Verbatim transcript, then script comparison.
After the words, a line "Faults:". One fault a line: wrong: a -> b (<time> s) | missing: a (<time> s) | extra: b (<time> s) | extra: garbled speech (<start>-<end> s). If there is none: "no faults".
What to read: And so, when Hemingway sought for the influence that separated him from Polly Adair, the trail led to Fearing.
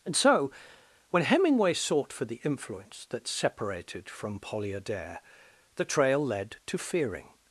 And so, when Hemingway sought for the influence that separated from Polly Adair, the trail led to Fearing.
Faults:
missing: him (4.1 s)